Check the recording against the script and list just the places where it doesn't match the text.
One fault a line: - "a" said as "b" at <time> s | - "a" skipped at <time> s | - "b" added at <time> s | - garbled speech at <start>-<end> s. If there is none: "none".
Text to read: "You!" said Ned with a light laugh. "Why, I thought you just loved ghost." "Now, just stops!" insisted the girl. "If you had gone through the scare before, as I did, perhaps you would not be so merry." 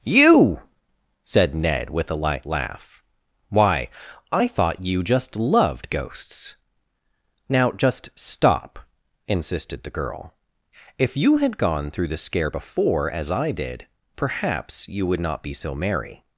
- "ghost" said as "ghosts" at 5.9 s
- "stops" said as "stop" at 8.2 s